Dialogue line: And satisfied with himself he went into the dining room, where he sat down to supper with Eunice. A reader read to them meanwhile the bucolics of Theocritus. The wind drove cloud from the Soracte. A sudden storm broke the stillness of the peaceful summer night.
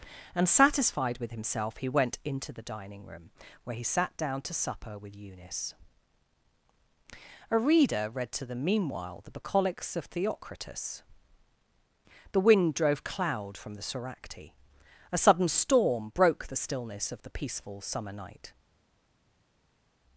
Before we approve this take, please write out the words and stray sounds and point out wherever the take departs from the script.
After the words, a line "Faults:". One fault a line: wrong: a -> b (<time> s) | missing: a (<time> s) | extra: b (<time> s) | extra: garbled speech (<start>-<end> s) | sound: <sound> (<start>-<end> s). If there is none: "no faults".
And satisfied with himself he went into the dining room, where he sat down to supper with Eunice. A reader read to them meanwhile the bucolics of Theocritus. The wind drove cloud from the Soracte. A sudden storm broke the stillness of the peaceful summer night.
Faults:
no faults